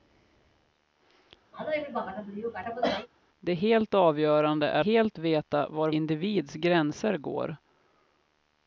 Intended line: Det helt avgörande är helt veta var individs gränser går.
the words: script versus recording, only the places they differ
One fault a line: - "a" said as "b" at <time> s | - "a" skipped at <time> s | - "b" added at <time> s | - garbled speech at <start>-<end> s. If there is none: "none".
none